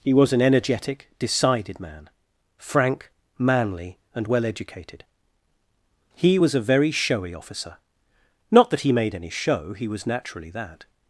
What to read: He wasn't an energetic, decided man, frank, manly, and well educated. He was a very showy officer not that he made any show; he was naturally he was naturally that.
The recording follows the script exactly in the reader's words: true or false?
false